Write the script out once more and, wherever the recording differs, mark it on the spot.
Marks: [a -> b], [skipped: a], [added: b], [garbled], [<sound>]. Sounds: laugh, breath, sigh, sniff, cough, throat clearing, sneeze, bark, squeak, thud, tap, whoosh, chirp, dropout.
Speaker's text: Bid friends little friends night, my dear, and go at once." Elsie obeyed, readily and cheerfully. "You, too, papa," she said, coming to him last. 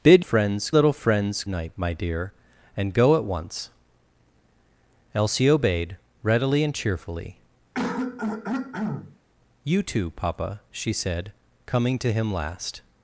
Bid friends little friends night, my dear, and go at once." Elsie obeyed, readily and cheerfully. [throat clearing] "You, too, papa," she said, coming to him last.